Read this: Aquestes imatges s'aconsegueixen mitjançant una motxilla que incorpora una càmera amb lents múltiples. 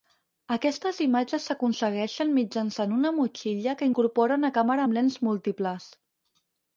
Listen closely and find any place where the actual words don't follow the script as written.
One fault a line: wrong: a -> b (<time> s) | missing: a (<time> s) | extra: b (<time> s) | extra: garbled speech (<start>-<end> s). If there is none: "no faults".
no faults